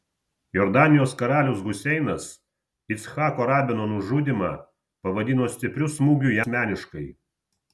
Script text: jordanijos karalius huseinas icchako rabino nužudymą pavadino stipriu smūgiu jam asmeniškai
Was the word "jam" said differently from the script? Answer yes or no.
yes